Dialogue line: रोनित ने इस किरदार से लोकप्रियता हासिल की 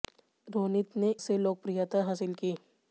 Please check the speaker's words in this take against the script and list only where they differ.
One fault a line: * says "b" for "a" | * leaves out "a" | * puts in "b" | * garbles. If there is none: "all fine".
* leaves out "इस किरदार"